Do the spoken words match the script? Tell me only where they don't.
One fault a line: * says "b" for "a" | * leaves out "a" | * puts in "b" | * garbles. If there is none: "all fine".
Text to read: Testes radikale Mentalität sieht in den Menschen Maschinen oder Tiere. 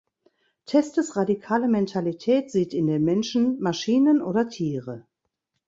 all fine